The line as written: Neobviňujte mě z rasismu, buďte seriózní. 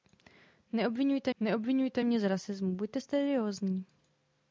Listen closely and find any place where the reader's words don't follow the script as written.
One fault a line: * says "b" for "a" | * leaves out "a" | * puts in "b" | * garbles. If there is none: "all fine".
* puts in "neobviňujte"